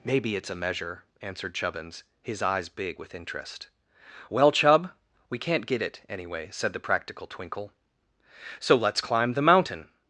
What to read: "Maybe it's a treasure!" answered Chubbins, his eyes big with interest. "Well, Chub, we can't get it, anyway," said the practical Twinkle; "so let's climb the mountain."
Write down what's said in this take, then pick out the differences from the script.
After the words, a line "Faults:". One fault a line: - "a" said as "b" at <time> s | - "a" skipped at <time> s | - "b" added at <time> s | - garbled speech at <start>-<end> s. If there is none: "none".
"Maybe it's a measure!" answered Chubbins, his eyes big with interest. "Well, Chub, we can't get it, anyway," said the practical Twinkle; "so let's climb the mountain."
Faults:
- "treasure" said as "measure" at 0.6 s